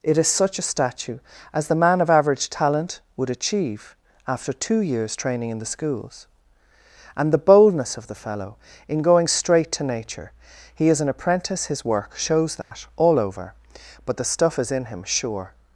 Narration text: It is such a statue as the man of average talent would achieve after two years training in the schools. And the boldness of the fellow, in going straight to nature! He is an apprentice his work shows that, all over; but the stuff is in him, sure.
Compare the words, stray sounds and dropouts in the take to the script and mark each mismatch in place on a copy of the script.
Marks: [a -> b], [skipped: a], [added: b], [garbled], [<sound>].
It is such a statue as the man of average talent would achieve after two years training in the schools. And the boldness of the fellow, in going straight to nature! He is an apprentice his work shows that, [dropout] all over; but the stuff is in him, sure.